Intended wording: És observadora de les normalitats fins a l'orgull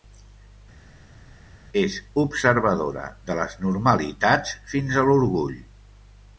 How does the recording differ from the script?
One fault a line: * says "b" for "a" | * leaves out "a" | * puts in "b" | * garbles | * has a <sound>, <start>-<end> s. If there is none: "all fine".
all fine